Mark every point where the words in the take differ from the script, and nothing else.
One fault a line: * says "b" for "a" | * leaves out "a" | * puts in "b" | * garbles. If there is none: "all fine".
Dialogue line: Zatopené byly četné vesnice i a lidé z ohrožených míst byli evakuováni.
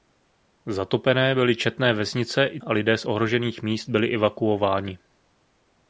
all fine